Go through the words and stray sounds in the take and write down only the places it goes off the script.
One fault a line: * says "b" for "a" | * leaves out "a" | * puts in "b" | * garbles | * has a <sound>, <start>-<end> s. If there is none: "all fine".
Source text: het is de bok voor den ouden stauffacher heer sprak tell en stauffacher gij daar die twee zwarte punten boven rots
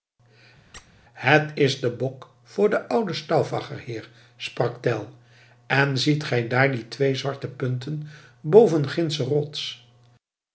* has a squeak, 0.7-0.9 s
* says "ziet" for "stauffacher"
* puts in "gindsche"